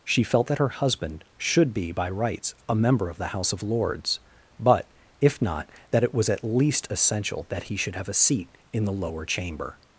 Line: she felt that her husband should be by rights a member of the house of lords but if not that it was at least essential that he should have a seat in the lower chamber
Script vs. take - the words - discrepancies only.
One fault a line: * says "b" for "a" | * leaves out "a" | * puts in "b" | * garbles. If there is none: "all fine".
all fine